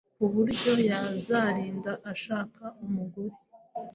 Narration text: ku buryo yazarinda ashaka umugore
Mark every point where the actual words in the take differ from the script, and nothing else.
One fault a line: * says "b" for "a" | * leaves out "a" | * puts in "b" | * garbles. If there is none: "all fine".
all fine